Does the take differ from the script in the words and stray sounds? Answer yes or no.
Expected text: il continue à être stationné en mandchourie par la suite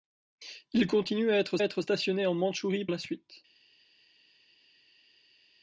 yes